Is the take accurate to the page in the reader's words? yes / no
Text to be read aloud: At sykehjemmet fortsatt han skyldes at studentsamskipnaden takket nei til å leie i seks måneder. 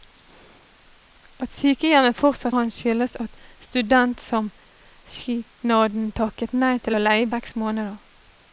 yes